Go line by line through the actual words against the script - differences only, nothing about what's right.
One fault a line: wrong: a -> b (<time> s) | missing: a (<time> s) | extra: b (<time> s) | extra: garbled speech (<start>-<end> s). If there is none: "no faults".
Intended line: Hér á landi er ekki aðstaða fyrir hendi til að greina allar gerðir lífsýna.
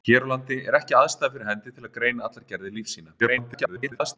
extra: garbled speech (3.2-4.2 s)